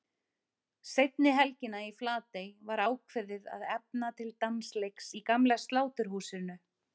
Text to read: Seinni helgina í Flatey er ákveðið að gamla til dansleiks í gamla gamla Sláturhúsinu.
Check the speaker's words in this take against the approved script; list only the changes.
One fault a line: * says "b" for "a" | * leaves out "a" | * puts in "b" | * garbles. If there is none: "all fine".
* says "var" for "er"
* says "efna" for "gamla"
* leaves out "gamla"